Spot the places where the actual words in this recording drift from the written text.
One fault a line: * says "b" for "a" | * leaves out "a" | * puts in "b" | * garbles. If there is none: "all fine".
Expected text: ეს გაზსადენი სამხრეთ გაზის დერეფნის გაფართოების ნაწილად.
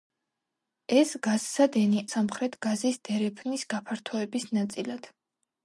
all fine